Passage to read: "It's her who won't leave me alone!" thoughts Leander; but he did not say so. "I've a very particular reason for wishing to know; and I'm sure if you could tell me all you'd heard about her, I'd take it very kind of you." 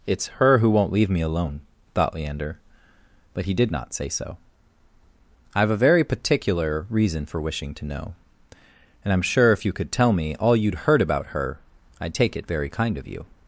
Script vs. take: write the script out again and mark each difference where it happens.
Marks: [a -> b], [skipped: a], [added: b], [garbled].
"It's her who won't leave me alone!" [thoughts -> thought] Leander; but he did not say so. "I've a very particular reason for wishing to know; and I'm sure if you could tell me all you'd heard about her, I'd take it very kind of you."